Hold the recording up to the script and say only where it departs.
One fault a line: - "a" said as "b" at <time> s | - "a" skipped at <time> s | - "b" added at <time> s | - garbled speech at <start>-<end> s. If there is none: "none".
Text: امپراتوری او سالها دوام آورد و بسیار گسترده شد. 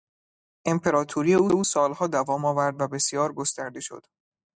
- "او" added at 1.5 s